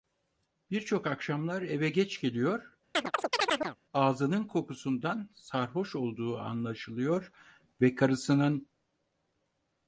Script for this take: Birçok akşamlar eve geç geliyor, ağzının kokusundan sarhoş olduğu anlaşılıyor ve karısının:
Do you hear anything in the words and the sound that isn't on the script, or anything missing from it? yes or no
yes